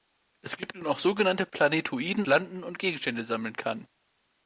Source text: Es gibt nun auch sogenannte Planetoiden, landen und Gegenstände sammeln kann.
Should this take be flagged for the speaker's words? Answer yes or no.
no